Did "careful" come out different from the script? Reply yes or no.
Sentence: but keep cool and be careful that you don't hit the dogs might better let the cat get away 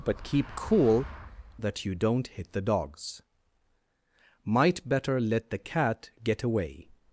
yes